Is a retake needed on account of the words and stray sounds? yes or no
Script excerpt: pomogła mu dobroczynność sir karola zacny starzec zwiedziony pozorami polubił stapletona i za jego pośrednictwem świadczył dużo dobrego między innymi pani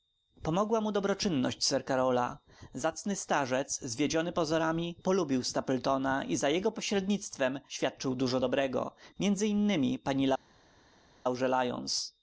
no